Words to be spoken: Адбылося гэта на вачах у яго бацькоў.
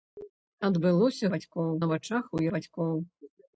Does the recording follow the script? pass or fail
fail